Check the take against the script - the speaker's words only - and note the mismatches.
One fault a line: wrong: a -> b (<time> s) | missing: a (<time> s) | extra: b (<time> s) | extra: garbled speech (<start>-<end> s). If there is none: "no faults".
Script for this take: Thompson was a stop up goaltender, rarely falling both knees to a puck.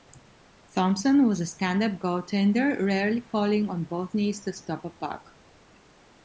wrong: stop -> stand (1.4 s)
extra: on (3.7 s)
extra: stop (4.5 s)